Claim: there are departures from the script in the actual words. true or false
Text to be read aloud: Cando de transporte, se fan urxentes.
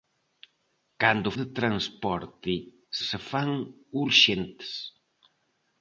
false